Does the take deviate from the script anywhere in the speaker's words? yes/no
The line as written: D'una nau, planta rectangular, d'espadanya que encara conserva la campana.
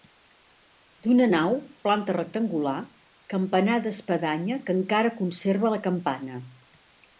yes